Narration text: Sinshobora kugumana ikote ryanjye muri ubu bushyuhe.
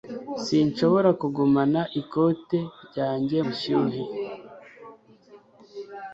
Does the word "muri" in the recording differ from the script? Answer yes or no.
yes